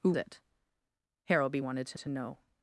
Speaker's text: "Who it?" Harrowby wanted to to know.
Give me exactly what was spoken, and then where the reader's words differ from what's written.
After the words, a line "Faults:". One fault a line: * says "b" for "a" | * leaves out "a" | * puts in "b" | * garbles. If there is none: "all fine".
"Who it?" Harrowby wanted to to know.
Faults:
all fine